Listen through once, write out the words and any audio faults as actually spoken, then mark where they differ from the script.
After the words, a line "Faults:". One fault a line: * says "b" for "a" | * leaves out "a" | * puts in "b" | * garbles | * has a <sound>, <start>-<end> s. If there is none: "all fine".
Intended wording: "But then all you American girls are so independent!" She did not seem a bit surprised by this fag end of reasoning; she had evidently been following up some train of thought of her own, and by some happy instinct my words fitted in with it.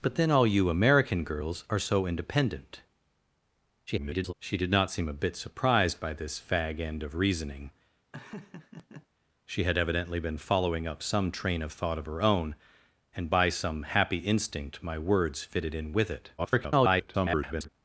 "But then all you American girls are so independent!" [garbled] She did not seem a bit surprised by this fag end of reasoning; she had evidently been following up some train of thought of her own, and by some happy instinct my words fitted in with it. [garbled]
Faults:
* garbles
* has a laugh, 8.1-9.1 s
* garbles